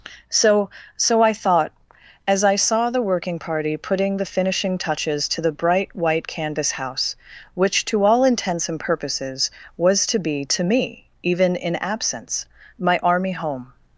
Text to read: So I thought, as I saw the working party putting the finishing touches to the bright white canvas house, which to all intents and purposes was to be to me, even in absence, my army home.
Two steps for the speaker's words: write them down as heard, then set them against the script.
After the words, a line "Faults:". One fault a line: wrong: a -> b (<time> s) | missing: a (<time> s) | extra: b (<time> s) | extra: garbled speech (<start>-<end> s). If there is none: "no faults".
So so I thought, as I saw the working party putting the finishing touches to the bright white canvas house, which to all intents and purposes was to be to me, even in absence, my army home.
Faults:
extra: so (1.0 s)